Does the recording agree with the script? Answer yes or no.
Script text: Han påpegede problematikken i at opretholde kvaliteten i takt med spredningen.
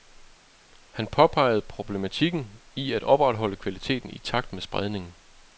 yes